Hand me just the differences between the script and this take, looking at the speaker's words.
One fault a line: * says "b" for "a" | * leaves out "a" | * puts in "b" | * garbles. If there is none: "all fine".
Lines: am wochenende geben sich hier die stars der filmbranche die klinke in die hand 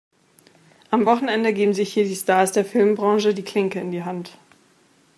all fine